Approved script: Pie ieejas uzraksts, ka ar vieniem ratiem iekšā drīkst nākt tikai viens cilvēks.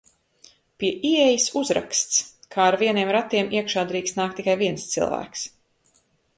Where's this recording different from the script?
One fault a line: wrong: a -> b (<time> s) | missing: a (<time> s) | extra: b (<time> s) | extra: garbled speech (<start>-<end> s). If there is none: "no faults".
no faults